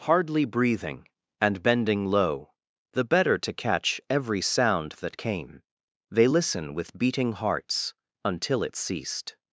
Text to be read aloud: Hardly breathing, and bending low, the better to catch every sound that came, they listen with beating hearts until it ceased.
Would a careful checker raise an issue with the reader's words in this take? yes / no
no